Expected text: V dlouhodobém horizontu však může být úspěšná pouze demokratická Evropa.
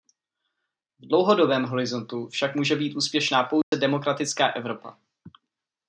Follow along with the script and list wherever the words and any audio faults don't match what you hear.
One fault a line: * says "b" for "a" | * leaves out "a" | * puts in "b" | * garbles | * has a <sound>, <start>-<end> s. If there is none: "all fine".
* has a dropout, 3.6-3.7 s